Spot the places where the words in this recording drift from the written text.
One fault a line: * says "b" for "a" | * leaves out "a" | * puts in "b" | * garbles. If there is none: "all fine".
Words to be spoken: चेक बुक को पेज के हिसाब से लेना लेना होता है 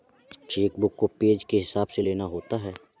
* leaves out "लेना"